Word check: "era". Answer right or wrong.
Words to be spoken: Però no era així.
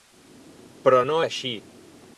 wrong